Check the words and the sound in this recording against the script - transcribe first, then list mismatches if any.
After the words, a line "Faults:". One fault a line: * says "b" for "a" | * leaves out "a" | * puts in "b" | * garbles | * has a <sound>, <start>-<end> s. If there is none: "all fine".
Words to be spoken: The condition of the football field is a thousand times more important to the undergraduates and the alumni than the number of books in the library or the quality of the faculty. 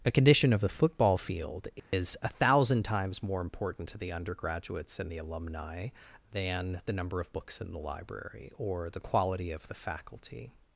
A condition of the football field is a thousand times more important to the undergraduates and the alumni than the number of books in the library or the quality of the faculty.
Faults:
* says "A" for "The"
* has a dropout, 1.8-1.9 s